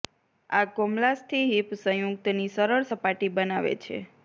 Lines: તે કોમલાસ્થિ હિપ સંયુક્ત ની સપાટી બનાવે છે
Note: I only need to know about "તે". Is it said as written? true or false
false